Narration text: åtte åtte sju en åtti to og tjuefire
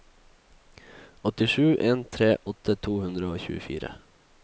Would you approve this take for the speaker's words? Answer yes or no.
no